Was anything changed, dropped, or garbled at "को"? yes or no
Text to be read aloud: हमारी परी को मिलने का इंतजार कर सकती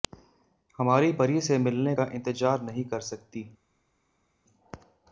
yes